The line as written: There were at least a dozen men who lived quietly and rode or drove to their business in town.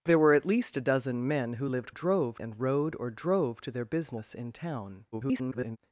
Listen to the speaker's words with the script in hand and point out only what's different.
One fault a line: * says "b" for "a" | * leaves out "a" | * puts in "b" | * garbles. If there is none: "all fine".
* says "drove" for "quietly"
* garbles